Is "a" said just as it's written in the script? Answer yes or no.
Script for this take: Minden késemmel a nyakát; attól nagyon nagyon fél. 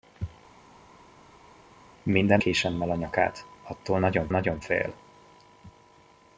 yes